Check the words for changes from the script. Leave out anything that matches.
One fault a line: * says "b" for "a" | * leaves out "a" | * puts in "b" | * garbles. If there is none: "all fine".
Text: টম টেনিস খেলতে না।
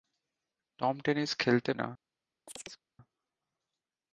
all fine